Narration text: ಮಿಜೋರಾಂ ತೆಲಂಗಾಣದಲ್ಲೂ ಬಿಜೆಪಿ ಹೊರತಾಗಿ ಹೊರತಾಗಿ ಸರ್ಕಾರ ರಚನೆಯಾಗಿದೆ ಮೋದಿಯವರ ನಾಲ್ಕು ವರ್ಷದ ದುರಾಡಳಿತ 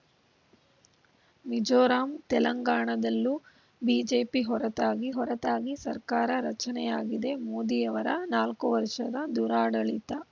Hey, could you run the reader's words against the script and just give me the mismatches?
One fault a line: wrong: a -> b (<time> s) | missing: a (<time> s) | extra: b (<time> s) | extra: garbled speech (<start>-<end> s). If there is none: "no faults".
no faults